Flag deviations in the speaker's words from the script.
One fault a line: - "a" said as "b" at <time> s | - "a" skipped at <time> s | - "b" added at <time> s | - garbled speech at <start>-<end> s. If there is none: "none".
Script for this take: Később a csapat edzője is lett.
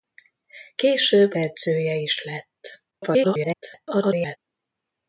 - "a csapat" skipped at 1.3 s
- garbled speech at 2.9-4.4 s